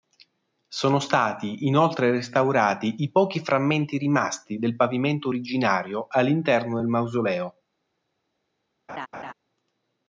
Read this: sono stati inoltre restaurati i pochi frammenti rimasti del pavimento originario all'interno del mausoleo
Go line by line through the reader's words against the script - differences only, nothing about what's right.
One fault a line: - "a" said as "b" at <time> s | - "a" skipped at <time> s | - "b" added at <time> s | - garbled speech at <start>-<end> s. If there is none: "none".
none